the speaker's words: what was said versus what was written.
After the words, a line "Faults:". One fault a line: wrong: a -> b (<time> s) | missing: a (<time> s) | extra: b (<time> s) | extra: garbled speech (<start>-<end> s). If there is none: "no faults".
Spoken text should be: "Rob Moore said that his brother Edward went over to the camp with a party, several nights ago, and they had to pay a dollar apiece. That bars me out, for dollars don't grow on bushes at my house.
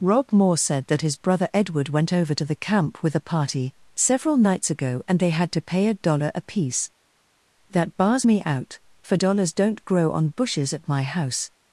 "Rob Moore said that his brother Edward went over to the camp with a party, several nights ago, and they had to pay a dollar apiece. That bars me out, for dollars don't grow on bushes at my house.
Faults:
no faults